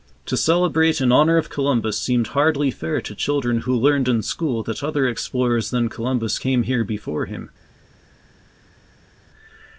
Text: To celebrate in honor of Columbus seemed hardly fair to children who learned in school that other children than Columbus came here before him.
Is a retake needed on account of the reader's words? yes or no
yes